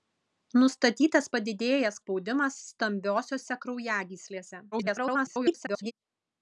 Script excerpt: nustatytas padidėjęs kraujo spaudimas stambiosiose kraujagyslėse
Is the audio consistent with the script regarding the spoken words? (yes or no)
no